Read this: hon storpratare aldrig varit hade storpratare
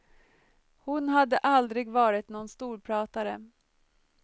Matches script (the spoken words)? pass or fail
fail